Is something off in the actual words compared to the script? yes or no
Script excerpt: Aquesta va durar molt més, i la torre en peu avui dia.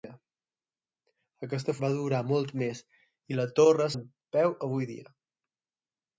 no